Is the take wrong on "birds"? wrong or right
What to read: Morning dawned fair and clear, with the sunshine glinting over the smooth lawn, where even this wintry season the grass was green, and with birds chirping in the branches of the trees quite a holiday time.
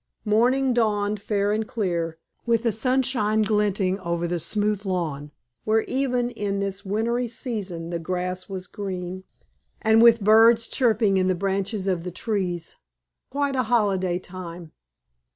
right